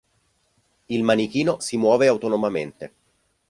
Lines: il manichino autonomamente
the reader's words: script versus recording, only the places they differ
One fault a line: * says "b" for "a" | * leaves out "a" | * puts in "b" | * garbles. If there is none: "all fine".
* puts in "si muove"